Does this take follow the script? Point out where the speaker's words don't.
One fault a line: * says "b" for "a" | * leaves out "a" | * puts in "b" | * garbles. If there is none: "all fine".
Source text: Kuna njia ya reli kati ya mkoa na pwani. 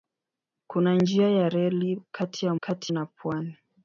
* says "kati" for "mkoa"